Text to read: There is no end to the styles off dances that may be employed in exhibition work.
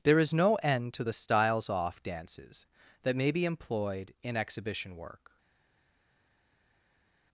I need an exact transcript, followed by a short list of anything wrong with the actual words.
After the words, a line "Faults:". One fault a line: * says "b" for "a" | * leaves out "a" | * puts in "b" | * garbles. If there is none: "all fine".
There is no end to the styles off dances that may be employed in exhibition work.
Faults:
all fine